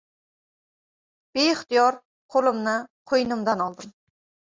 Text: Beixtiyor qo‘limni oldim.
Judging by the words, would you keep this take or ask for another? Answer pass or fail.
fail